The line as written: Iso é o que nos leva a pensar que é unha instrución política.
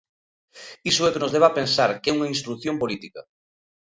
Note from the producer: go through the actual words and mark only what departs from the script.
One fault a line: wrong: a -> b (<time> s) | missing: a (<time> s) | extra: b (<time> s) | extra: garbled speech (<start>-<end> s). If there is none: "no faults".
no faults